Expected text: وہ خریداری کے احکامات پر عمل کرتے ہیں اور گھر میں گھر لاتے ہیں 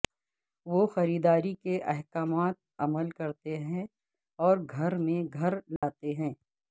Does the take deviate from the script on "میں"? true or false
false